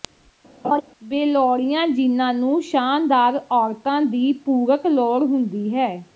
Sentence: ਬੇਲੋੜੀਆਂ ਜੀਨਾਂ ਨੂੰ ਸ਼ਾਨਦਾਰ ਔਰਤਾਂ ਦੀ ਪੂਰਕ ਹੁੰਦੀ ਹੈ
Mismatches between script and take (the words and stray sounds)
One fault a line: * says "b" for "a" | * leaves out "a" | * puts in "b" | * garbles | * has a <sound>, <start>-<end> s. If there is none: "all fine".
* has a laugh, 0.6-0.8 s
* puts in "ਲੋੜ"